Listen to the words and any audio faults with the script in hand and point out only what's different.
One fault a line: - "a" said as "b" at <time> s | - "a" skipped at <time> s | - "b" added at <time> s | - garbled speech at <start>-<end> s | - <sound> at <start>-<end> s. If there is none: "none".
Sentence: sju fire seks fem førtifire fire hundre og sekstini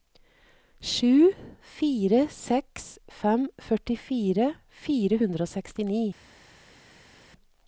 none